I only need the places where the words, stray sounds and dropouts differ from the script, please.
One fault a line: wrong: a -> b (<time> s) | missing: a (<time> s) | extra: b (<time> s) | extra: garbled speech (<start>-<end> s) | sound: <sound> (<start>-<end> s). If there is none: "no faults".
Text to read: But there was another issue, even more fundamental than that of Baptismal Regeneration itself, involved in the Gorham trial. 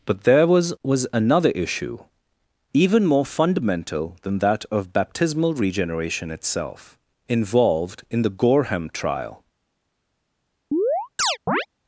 extra: was (0.8 s)
sound: chirp (10.7-11.7 s)